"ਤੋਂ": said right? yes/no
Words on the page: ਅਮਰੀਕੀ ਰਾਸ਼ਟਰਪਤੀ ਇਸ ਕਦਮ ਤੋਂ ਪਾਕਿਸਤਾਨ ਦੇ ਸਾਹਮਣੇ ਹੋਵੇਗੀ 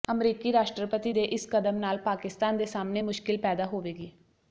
no